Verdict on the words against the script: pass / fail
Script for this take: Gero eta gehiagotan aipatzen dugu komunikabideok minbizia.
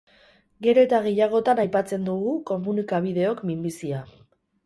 pass